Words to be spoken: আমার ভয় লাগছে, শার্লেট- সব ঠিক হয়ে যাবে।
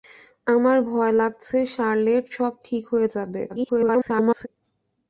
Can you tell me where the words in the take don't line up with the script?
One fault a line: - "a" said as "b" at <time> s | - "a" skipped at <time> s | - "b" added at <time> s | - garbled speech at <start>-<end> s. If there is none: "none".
- garbled speech at 3.5-4.5 s